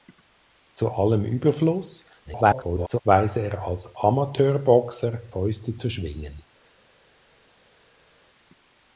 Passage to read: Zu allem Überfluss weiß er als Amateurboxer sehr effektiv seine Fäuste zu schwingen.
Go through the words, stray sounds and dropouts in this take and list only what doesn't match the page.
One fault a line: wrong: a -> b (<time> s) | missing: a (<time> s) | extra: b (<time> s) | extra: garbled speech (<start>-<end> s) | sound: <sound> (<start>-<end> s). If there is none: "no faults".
extra: garbled speech (2.3-3.0 s)
missing: sehr effektiv seine (5.2 s)